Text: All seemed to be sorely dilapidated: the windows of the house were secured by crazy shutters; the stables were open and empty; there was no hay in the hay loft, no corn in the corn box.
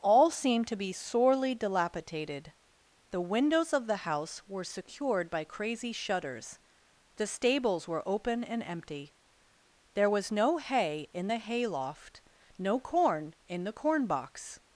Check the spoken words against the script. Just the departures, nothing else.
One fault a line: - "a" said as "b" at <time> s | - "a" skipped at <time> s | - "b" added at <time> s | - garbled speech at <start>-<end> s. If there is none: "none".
none